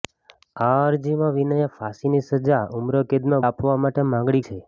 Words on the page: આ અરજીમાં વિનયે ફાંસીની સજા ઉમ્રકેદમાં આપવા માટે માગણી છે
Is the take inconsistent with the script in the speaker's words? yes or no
no